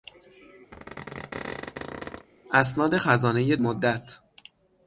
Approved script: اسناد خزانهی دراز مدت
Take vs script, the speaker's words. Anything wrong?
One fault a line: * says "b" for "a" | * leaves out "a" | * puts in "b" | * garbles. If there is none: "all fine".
* leaves out "دراز"